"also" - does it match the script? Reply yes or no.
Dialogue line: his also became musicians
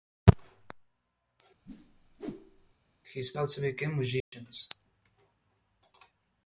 yes